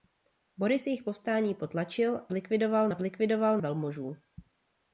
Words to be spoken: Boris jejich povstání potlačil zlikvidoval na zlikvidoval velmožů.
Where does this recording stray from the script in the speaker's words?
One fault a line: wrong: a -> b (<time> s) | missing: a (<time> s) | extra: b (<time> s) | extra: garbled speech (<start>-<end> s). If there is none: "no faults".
no faults